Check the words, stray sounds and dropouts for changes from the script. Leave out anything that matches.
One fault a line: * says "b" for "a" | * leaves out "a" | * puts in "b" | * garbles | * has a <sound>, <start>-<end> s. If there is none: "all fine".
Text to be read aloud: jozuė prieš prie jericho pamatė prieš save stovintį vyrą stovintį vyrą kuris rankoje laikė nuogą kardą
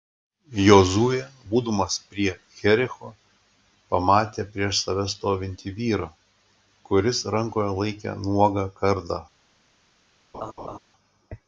* says "būdamas" for "prieš"
* leaves out "stovintį vyrą"
* has a laugh, 10.3-10.8 s